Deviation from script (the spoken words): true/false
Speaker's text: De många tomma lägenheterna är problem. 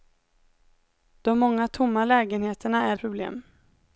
false